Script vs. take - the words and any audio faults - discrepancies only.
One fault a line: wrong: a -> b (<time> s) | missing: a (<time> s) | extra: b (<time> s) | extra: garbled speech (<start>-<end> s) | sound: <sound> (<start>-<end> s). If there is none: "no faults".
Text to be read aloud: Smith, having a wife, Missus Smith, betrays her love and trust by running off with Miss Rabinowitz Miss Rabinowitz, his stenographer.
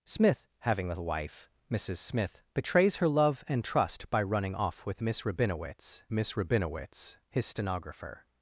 no faults